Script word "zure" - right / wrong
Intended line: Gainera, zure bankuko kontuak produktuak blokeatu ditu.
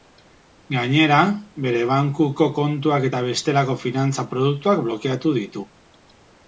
wrong